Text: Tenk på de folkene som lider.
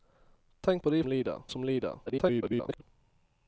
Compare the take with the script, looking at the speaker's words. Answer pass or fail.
fail